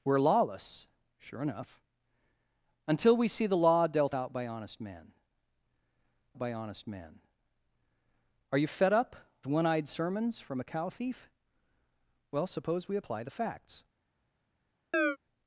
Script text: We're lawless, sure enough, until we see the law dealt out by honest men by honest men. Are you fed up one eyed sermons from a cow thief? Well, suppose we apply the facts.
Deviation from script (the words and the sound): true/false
true